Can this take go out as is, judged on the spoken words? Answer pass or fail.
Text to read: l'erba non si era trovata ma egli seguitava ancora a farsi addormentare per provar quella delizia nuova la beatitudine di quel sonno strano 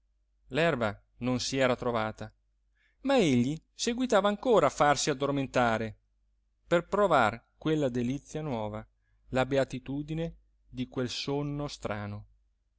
pass